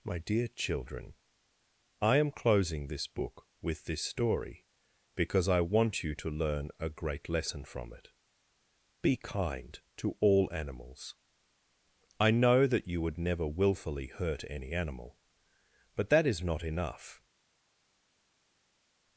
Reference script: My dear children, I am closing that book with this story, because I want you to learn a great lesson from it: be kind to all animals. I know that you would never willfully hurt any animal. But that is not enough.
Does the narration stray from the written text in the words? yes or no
yes